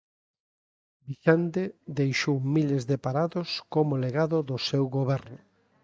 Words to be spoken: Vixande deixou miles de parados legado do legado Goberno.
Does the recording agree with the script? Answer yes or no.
no